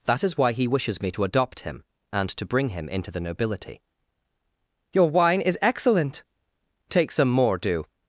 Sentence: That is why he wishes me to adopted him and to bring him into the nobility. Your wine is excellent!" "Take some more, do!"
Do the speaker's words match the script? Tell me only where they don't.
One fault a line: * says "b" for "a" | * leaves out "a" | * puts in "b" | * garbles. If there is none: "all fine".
* says "adopt" for "adopted"